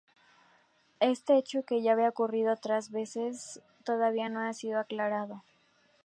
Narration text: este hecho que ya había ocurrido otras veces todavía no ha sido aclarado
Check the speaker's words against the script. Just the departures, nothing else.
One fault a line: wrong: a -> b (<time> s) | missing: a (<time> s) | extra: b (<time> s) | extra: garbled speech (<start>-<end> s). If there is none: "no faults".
no faults